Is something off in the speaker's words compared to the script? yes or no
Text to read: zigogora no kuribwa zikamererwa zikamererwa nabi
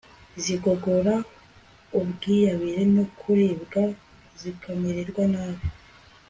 yes